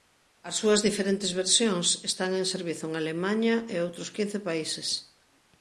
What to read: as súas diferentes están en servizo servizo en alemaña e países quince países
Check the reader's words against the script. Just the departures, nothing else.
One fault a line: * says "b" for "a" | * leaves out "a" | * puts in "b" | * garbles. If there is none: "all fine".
* puts in "versións"
* leaves out "servizo"
* says "outros" for "países"